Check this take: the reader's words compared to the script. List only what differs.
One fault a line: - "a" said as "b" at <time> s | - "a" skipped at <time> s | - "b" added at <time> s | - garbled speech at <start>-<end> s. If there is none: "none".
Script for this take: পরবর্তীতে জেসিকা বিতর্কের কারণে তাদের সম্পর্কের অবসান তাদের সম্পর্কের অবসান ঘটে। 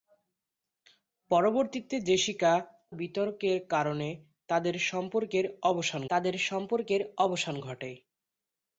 none